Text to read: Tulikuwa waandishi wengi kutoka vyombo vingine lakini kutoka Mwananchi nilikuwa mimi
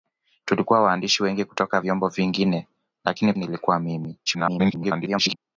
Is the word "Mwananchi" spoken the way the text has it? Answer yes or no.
no